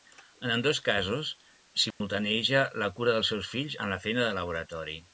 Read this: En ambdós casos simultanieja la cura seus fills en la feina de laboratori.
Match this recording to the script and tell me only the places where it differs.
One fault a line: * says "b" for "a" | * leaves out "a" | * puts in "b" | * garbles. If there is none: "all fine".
* puts in "dels"
* says "amb" for "en"